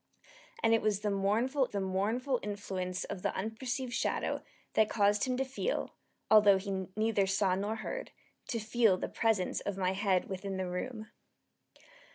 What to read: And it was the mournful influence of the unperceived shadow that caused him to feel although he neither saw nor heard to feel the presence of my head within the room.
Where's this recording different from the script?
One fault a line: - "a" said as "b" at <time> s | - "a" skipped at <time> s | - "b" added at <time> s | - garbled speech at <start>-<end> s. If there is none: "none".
- "the mournful" added at 1.7 s